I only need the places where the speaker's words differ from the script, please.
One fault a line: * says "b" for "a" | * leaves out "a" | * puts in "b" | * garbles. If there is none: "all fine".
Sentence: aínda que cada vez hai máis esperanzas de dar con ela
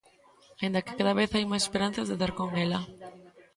all fine